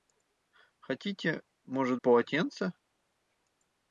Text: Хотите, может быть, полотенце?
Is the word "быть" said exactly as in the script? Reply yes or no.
no